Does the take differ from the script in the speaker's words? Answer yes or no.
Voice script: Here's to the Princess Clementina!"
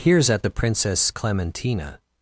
yes